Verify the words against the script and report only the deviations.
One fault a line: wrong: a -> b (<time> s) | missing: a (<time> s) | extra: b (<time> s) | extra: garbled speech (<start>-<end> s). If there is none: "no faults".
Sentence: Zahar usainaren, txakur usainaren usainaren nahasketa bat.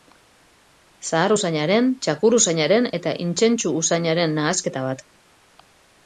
extra: eta intsentsu (3.0 s)